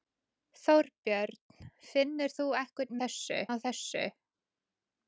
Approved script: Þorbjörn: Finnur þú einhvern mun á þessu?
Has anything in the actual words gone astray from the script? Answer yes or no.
yes